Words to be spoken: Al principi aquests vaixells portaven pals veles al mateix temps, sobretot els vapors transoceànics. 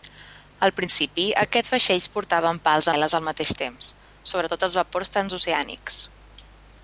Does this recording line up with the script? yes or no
yes